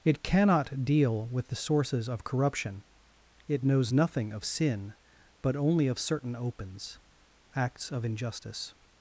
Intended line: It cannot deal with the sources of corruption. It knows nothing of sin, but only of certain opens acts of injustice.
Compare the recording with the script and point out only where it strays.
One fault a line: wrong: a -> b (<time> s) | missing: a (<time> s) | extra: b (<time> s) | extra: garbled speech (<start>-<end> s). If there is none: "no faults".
no faults